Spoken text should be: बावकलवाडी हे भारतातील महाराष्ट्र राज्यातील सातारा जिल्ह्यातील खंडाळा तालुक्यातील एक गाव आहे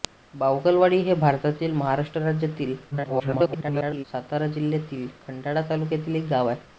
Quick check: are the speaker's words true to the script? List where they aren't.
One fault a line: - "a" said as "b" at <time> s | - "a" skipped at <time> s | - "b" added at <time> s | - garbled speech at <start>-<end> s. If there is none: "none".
- garbled speech at 2.9-4.0 s